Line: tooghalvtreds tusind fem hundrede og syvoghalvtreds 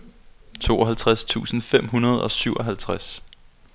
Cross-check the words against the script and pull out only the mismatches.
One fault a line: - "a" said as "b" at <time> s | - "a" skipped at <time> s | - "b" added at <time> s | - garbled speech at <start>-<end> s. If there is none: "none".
none